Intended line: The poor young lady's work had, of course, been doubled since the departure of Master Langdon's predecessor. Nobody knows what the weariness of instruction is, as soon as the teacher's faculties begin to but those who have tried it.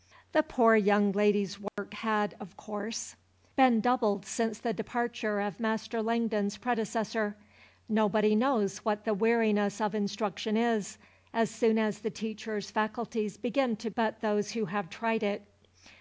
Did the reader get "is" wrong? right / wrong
right